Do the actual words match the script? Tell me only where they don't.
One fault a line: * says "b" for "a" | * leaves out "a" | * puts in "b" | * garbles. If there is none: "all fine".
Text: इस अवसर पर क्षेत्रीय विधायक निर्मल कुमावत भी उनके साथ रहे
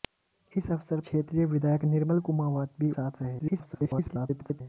* leaves out "पर"
* leaves out "उनके"
* garbles